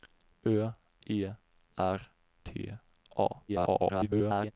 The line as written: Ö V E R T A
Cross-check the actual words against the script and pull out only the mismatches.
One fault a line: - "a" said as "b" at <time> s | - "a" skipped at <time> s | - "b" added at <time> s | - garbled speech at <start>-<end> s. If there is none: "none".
- "V" skipped at 0.7 s
- garbled speech at 3.5-4.5 s